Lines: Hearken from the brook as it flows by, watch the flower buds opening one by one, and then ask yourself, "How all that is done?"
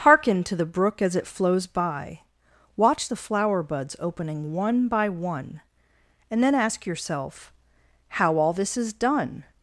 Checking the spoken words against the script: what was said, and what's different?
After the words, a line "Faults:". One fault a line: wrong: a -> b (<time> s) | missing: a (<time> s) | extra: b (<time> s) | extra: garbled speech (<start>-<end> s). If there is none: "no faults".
Hearken to the brook as it flows by, watch the flower buds opening one by one, and then ask yourself, "How all this is done?"
Faults:
wrong: from -> to (0.5 s)
wrong: that -> this (8.5 s)